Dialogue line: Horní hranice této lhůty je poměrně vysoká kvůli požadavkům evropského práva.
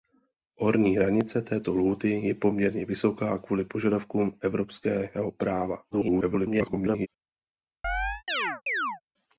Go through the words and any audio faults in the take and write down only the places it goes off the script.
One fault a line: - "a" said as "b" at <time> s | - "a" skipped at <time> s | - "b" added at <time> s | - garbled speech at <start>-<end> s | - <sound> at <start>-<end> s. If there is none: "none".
- garbled speech at 5.9-7.1 s
- chirp at 7.8-9.0 s